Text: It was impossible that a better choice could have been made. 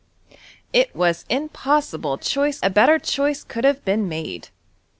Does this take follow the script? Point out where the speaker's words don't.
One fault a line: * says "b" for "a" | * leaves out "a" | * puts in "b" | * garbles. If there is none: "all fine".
* says "choice" for "that"